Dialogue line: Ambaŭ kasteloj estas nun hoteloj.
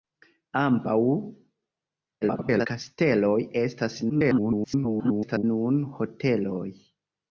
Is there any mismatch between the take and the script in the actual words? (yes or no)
yes